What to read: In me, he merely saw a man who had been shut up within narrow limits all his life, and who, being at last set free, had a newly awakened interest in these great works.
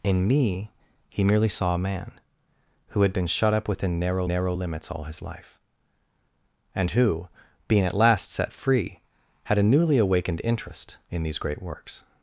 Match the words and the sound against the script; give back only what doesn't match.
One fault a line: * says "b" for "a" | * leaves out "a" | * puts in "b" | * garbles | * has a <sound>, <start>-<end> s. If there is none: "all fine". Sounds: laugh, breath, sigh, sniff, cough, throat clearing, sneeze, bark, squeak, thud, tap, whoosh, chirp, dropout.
* puts in "narrow"